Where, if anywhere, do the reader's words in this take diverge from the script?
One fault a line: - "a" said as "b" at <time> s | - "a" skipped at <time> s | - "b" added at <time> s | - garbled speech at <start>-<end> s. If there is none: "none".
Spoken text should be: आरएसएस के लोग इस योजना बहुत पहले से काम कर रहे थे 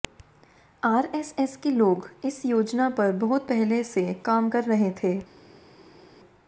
- "पर" added at 2.9 s